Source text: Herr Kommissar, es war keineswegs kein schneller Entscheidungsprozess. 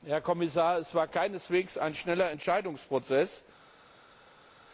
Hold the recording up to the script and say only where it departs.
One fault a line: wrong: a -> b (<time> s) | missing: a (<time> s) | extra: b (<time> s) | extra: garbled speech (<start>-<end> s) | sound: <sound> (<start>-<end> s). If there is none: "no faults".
wrong: kein -> ein (1.8 s)